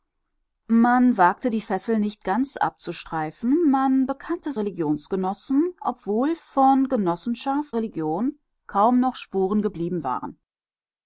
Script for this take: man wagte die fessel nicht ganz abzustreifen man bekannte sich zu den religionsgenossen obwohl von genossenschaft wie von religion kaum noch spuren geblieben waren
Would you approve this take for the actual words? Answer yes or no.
no